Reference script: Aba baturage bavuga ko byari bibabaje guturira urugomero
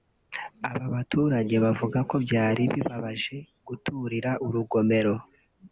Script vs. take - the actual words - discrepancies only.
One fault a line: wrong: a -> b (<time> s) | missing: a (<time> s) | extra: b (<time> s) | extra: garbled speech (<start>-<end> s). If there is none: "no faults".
no faults